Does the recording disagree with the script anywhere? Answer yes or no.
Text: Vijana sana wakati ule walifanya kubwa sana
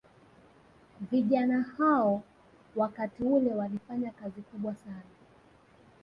yes